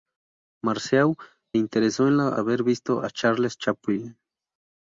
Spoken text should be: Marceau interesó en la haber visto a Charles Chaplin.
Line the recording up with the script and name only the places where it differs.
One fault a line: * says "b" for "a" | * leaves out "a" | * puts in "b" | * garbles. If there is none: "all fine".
all fine